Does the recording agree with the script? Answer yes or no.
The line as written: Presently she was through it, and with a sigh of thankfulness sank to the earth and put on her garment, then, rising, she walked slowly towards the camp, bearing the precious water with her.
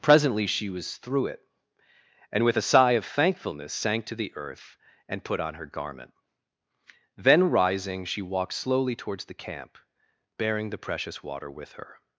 yes